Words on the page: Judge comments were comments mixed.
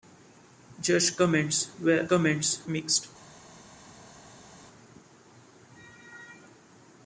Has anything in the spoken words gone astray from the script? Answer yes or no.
no